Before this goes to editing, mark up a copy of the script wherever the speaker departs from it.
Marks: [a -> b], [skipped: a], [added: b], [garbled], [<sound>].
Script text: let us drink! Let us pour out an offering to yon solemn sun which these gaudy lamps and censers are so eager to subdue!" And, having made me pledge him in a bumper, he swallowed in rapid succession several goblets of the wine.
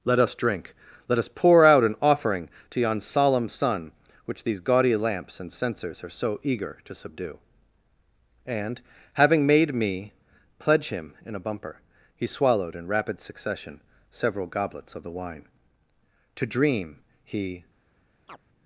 let us drink! Let us pour out an offering to yon solemn sun which these gaudy lamps and censers are so eager to subdue!" And, having made me pledge him in a bumper, he swallowed in rapid succession several goblets of the wine. [added: To dream he] [chirp]